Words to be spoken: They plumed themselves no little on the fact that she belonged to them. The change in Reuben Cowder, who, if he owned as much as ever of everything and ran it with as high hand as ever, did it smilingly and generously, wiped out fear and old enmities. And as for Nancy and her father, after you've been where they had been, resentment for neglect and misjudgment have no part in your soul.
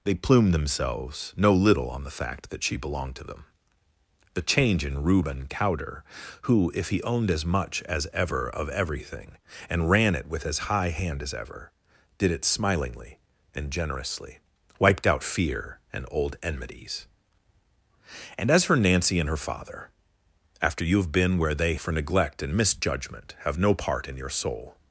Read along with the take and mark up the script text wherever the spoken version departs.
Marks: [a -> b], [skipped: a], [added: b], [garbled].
They plumed themselves no little on the fact that she belonged to them. The change in Reuben Cowder, who, if he owned as much as ever of everything and ran it with as high hand as ever, did it smilingly and generously, wiped out fear and old enmities. And as for Nancy and her father, after you've been where they [skipped: had been, resentment] for neglect and misjudgment have no part in your soul.